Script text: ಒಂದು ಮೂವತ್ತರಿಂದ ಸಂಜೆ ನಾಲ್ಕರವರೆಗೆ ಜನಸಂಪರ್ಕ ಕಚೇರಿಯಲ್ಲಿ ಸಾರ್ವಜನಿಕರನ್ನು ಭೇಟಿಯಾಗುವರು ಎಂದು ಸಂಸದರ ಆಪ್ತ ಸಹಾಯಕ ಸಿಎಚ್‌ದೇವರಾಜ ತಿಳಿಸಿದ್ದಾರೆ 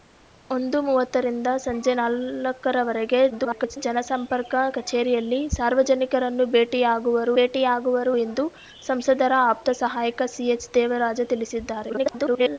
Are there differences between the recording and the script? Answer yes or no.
yes